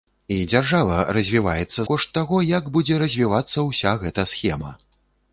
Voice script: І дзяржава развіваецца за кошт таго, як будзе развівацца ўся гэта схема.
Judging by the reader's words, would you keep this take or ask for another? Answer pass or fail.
fail